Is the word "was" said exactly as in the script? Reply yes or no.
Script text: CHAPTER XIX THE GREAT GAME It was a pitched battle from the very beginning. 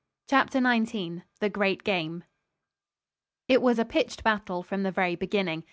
yes